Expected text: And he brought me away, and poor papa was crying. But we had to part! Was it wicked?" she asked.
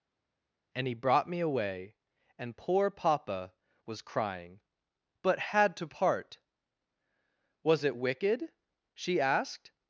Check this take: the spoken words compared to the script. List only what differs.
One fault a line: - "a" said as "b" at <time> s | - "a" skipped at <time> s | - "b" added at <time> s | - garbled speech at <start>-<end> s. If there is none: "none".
- "we" skipped at 5.4 s